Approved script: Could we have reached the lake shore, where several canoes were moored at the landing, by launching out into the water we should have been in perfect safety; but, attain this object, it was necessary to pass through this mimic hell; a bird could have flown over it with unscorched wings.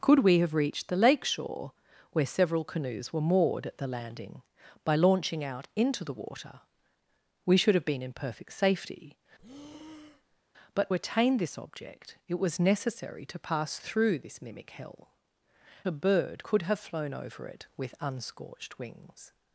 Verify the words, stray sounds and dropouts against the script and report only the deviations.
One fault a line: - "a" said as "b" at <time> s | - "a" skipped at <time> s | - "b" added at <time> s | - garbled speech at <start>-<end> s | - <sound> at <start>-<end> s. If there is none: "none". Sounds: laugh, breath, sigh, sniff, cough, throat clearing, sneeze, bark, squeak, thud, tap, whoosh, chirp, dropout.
- breath at 9.4-10.4 s